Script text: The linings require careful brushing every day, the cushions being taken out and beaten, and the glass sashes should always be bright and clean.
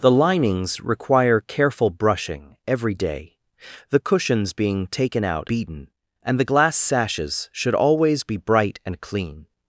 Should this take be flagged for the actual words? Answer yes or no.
yes